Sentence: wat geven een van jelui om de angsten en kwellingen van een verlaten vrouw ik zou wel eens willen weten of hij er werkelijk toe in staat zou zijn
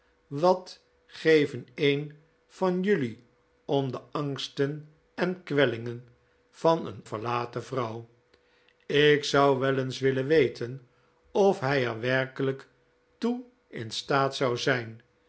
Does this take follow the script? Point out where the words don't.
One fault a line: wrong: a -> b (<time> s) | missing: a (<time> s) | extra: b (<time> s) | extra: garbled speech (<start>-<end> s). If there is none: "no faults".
no faults